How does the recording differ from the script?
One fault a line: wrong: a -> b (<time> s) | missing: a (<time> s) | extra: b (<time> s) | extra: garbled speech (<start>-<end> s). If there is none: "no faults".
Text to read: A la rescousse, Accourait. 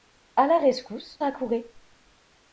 no faults